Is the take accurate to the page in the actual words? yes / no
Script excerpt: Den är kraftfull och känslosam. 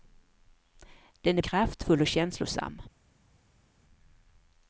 yes